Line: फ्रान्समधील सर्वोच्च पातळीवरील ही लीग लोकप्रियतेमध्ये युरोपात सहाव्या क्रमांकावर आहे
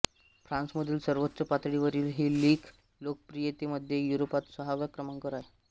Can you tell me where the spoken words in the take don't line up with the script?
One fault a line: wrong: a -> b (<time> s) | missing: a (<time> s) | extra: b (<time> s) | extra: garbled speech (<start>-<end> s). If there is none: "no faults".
no faults